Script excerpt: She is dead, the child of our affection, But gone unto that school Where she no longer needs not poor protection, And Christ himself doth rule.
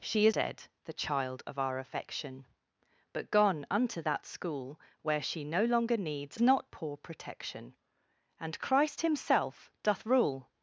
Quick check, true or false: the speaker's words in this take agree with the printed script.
true